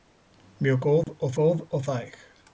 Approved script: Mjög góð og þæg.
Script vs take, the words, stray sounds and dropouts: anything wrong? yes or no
yes